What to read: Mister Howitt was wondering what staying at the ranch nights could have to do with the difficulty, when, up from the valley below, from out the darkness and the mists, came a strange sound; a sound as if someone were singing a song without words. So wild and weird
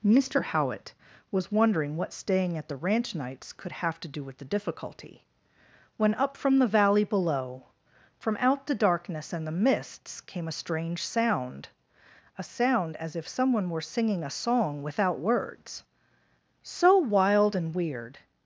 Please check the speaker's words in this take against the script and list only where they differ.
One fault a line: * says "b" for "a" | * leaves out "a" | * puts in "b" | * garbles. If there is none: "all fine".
all fine